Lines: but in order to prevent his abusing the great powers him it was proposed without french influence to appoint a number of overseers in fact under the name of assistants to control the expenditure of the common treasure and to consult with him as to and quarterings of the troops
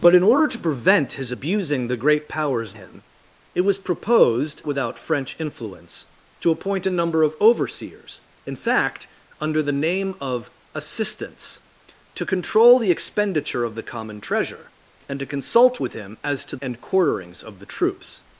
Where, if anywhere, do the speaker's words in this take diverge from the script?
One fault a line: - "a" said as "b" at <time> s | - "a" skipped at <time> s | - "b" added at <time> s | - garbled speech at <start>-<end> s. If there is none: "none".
none